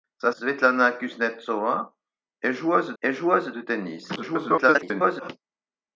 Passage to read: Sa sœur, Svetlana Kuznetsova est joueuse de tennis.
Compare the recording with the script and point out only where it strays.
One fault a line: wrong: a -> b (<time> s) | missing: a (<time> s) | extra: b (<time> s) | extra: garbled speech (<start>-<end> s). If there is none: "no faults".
missing: sœur (0.3 s)
extra: est joueuse (3.0 s)
extra: garbled speech (4.2-5.3 s)